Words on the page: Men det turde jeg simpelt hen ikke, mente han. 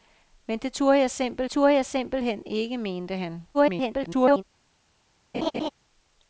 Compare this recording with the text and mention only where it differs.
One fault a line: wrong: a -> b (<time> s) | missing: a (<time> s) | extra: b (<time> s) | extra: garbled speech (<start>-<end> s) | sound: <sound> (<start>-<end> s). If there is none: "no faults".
extra: turde jeg simpelt (1.5 s)
extra: garbled speech (3.5-4.4 s)
sound: laugh (5.3-5.7 s)